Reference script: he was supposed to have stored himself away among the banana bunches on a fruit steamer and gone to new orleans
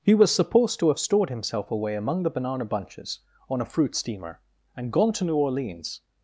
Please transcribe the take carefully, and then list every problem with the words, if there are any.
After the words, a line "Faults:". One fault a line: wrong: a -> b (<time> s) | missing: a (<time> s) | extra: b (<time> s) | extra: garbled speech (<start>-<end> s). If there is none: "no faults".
he was supposed to have stored himself away among the banana bunches on a fruit steamer and gone to new orleans
Faults:
no faults